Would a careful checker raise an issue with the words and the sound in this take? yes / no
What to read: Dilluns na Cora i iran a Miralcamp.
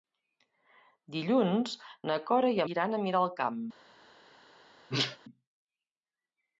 yes